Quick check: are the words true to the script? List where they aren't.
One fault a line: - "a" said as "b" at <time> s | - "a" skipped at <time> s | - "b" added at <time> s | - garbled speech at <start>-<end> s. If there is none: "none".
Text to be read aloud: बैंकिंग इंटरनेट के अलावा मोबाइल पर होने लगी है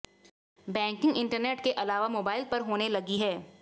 none